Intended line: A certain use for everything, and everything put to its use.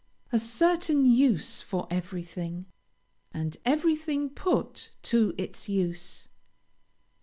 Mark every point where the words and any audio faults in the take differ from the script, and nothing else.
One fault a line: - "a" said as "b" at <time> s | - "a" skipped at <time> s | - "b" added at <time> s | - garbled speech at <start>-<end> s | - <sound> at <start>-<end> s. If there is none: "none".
none